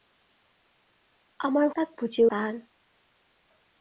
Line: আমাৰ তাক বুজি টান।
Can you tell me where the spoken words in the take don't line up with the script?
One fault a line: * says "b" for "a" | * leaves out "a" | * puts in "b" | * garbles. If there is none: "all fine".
all fine